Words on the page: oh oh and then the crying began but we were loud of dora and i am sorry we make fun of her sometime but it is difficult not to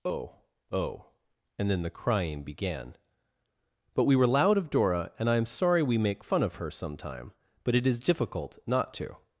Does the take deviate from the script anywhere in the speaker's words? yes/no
no